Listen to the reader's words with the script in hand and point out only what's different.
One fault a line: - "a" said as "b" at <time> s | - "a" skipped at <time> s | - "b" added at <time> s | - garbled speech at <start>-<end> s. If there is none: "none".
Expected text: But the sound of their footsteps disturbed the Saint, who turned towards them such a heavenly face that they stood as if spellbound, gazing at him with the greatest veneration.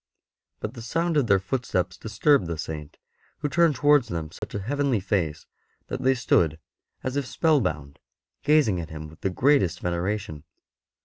none